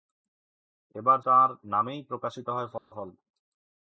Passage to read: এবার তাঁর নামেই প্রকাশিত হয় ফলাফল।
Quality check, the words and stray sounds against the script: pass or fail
fail